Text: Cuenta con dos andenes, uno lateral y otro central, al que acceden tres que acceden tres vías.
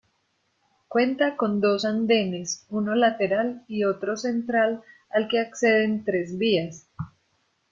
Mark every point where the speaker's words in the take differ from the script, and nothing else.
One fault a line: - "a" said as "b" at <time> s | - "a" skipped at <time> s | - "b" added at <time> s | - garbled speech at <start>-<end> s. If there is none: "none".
- "que acceden tres" skipped at 6.4 s